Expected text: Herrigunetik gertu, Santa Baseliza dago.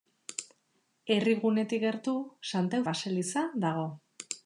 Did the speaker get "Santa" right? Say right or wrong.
right